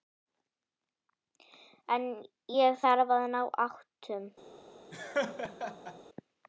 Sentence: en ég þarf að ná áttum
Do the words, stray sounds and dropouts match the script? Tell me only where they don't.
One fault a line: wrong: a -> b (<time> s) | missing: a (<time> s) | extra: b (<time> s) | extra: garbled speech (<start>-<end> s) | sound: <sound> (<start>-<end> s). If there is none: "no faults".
sound: laugh (4.9-6.0 s)